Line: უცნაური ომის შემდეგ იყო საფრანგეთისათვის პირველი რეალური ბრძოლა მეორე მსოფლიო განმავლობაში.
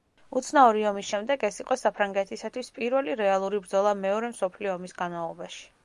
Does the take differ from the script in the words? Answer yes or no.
yes